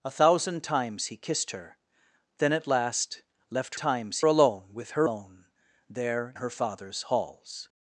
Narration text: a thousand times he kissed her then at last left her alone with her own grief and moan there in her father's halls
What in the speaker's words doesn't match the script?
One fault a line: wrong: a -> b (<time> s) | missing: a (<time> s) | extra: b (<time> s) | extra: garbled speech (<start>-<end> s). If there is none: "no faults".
wrong: her -> times (3.8 s)
missing: own grief and (5.1 s)
missing: in (6.3 s)